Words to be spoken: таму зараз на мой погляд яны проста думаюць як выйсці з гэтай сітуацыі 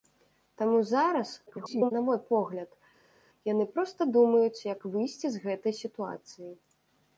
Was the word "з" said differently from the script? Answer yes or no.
no